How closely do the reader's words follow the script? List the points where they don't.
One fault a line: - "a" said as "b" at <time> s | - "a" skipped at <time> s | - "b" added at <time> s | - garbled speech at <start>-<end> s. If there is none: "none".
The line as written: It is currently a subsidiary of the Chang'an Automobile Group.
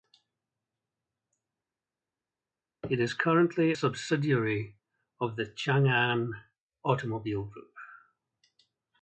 - "a" skipped at 3.7 s